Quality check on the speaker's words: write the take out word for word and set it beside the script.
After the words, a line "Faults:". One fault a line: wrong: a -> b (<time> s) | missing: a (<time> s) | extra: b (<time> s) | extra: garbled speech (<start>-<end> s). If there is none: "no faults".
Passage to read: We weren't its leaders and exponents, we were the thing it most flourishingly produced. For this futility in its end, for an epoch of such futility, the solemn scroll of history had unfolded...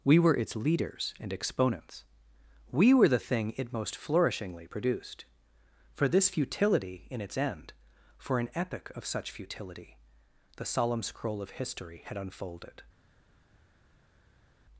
We were its leaders and exponents, we were the thing it most flourishingly produced. For this futility in its end, for an epoch of such futility, the solemn scroll of history had unfolded...
Faults:
wrong: weren't -> were (0.2 s)